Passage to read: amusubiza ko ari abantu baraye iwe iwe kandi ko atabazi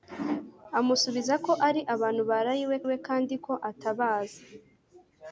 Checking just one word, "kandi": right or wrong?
right